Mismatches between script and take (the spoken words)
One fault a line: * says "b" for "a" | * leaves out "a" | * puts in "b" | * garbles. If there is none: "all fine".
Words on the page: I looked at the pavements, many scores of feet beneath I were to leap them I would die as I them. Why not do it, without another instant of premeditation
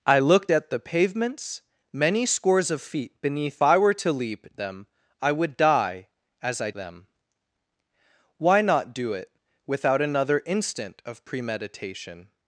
all fine